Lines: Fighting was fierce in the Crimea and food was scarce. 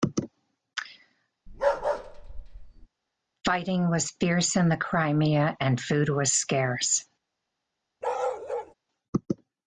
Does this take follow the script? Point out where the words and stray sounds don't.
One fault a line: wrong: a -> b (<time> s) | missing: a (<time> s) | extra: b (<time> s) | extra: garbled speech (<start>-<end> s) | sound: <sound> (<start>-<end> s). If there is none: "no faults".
sound: bark (1.5-2.9 s)
sound: bark (8.0-8.7 s)